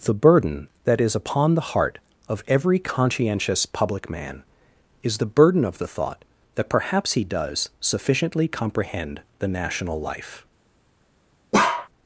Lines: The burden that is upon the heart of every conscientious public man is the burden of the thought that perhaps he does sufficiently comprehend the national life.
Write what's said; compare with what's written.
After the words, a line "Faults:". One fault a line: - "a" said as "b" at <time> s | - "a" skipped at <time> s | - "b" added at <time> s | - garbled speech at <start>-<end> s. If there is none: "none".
The burden that is upon the heart of every conscientious public man is the burden of the thought that perhaps he does sufficiently comprehend the national life.
Faults:
none